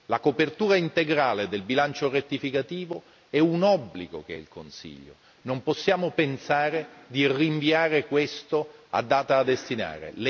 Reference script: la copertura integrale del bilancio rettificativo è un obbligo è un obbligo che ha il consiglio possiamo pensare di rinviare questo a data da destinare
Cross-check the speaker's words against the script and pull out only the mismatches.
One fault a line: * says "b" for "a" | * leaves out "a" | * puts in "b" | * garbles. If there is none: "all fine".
* leaves out "è un obbligo"
* puts in "non"